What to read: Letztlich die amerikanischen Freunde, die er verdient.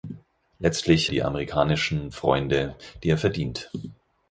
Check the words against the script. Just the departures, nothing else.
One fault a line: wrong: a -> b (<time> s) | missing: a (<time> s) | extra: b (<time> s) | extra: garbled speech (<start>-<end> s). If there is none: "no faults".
no faults